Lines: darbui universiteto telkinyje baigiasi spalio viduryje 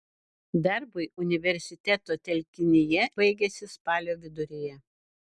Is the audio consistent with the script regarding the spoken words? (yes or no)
yes